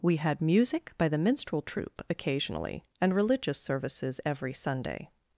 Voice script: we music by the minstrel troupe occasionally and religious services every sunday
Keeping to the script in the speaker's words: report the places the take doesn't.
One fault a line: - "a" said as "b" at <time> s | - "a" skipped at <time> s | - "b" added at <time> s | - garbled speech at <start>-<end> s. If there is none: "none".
- "had" added at 0.1 s